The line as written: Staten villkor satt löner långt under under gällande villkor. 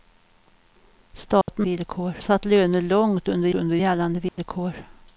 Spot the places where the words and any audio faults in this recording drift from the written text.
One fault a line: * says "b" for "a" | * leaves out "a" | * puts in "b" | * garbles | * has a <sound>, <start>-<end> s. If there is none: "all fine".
* has a dropout, 1.4-1.5 s
* has a dropout, 4.3-4.4 s